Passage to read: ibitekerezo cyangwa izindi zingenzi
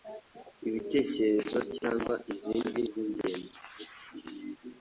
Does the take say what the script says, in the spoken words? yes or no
yes